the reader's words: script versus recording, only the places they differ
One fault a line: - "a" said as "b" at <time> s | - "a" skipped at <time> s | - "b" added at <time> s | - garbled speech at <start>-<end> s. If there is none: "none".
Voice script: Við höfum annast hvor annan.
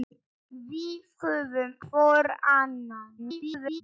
- "annast" skipped at 1.8 s
- garbled speech at 3.2-3.8 s